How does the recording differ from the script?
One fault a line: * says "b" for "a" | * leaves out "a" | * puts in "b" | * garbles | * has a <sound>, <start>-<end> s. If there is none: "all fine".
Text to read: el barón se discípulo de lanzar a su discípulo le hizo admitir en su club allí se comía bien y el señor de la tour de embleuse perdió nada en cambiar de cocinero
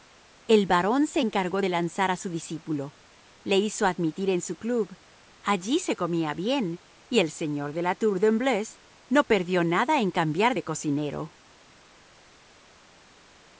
* says "encargó" for "discípulo"
* puts in "no"